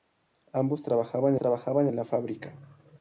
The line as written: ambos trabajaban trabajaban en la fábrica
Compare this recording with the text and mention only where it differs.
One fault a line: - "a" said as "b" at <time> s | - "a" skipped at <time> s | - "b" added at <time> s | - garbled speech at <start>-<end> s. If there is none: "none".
none